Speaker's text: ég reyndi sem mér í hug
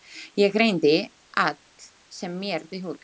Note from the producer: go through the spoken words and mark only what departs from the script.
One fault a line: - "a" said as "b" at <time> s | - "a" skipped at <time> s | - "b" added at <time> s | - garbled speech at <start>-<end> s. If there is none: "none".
none